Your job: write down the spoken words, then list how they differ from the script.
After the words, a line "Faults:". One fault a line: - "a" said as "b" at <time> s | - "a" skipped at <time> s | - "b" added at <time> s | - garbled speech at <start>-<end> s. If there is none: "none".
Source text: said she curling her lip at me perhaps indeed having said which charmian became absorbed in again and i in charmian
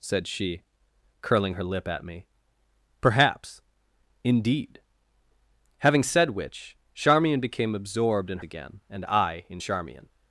said she curling her lip at me perhaps indeed having said which charmian became absorbed in again and i in charmian
Faults:
none